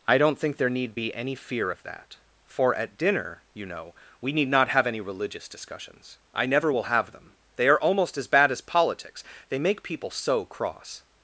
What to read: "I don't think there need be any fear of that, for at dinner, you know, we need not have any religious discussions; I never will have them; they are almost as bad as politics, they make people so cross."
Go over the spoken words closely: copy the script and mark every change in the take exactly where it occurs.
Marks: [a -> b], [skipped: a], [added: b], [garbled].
"I don't think there need be any fear of that, for at dinner, you know, we need not have any religious discussions; I never will have them; they are almost as bad as politics, they make people so cross."